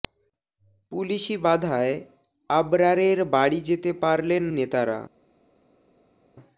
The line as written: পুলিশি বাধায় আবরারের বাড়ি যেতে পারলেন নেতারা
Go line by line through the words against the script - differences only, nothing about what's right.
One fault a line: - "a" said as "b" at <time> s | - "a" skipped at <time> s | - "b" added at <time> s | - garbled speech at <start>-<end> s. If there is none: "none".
none